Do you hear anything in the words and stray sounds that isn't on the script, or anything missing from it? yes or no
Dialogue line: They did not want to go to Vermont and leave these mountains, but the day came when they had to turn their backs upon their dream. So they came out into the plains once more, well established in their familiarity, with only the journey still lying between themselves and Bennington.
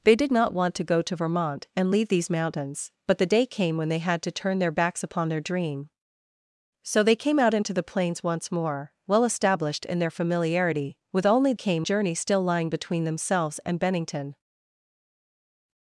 yes